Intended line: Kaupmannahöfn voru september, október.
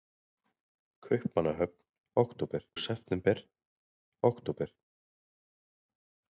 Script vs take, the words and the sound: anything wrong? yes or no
yes